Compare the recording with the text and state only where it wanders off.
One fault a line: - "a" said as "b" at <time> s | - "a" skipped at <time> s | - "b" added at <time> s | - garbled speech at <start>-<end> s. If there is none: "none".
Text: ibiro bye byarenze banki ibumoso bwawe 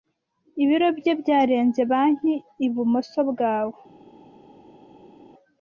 none